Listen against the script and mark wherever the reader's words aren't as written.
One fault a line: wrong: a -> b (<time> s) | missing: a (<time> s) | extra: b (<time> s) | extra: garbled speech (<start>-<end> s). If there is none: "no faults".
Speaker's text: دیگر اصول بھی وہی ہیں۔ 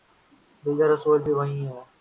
no faults